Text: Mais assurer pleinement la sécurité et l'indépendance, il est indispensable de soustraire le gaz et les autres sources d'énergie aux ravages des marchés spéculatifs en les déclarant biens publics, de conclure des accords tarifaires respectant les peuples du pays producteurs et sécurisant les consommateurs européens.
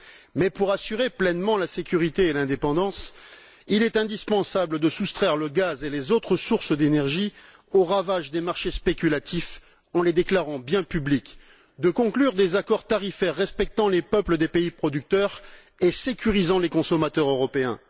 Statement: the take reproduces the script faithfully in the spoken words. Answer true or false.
false